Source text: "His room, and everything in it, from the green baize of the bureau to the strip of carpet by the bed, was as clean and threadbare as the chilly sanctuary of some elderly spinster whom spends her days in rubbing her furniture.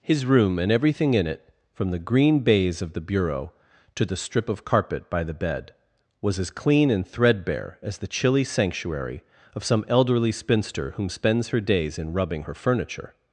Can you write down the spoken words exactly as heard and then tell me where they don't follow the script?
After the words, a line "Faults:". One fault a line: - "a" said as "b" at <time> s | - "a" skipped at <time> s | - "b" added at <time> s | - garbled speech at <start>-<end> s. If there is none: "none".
"His room, and everything in it, from the green baize of the bureau to the strip of carpet by the bed, was as clean and threadbare as the chilly sanctuary of some elderly spinster whom spends her days in rubbing her furniture.
Faults:
none